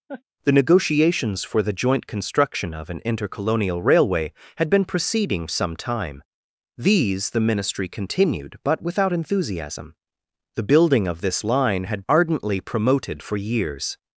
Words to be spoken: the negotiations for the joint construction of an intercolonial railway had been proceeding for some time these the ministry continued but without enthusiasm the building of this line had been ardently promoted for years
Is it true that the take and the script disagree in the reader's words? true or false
true